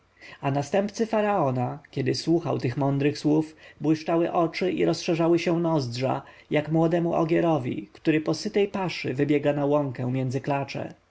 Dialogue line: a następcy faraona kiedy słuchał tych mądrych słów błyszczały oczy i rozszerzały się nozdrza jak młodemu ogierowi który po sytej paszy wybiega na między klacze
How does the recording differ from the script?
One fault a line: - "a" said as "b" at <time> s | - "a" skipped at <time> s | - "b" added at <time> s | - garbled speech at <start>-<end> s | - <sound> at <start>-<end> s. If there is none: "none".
- "łąkę" added at 9.7 s